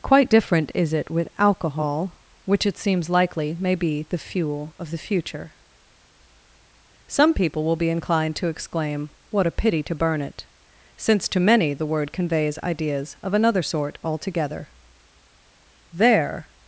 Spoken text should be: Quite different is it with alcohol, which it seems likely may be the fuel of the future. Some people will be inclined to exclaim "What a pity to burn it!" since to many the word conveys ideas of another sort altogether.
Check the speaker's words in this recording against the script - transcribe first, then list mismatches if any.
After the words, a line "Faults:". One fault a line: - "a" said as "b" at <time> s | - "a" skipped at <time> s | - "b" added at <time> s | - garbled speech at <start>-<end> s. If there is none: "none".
Quite different is it with alcohol, which it seems likely may be the fuel of the future. Some people will be inclined to exclaim "What a pity to burn it!" since to many the word conveys ideas of another sort altogether. There
Faults:
- "There" added at 15.9 s